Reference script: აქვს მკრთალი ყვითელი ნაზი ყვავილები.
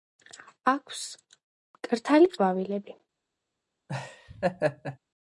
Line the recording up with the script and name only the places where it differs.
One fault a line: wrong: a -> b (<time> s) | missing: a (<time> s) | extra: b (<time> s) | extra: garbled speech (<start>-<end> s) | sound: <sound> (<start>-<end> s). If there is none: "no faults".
missing: ყვითელი ნაზი (2.3 s)
sound: laugh (3.9-5.0 s)